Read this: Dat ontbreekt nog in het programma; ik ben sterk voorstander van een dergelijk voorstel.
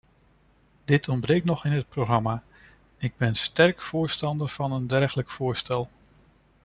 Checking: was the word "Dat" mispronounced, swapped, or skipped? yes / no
yes